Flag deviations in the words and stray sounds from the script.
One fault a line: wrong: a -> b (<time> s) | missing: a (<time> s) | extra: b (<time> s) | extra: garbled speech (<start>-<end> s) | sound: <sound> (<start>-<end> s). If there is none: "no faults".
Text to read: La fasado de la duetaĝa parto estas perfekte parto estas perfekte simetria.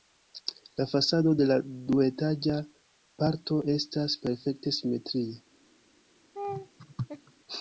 missing: parto estas perfekte (4.8 s)
sound: laugh (6.3-7.3 s)